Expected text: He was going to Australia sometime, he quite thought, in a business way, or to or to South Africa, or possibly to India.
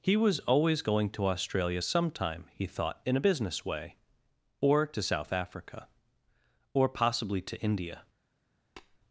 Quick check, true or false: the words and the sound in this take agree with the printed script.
false